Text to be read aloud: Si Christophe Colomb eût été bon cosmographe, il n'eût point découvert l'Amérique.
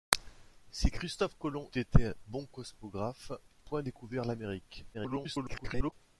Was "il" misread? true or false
true